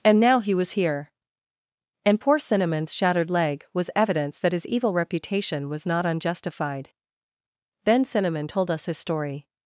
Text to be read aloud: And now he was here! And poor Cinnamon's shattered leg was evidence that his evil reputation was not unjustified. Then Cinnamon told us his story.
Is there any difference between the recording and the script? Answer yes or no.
no